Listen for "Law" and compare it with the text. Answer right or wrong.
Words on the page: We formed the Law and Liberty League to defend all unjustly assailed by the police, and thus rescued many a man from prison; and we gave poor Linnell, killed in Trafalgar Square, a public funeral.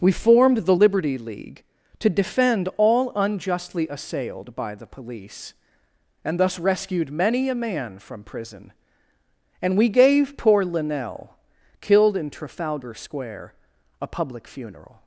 wrong